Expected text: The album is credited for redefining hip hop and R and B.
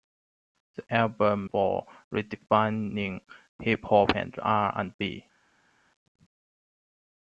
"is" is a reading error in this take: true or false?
true